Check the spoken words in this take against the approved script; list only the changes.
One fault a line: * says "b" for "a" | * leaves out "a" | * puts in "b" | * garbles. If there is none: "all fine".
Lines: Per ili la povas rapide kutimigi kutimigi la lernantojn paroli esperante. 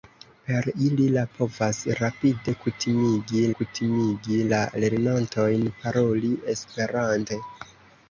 all fine